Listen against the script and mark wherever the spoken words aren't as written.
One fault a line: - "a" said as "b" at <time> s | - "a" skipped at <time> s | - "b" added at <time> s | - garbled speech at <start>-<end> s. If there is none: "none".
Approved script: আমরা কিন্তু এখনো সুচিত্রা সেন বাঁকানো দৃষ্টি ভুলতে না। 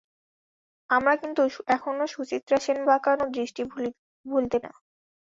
none